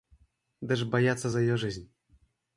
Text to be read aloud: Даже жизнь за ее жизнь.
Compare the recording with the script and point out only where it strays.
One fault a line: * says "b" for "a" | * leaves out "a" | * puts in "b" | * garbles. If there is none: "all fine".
* says "боятся" for "жизнь"